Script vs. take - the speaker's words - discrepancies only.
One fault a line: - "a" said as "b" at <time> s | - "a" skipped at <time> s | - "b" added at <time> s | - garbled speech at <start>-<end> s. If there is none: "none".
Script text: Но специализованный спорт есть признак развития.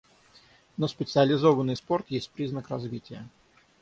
none